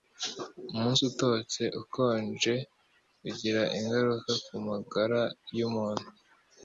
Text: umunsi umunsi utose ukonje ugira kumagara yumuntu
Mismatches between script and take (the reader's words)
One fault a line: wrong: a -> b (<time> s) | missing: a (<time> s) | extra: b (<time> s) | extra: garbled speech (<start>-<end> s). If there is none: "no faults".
missing: umunsi (1.0 s)
extra: ingaruka (3.8 s)